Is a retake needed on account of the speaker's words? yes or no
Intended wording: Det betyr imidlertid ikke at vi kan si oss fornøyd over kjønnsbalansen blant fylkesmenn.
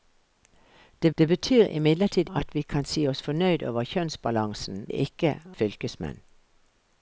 yes